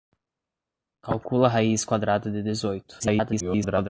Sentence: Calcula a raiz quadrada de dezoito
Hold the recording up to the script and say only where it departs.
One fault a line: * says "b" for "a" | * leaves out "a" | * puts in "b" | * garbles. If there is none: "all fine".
* garbles